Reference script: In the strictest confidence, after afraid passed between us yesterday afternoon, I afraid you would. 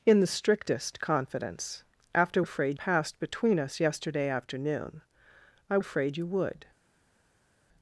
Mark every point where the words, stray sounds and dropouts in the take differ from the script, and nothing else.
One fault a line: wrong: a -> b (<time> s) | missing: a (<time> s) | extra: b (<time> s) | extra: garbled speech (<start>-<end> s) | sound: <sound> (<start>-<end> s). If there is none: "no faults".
no faults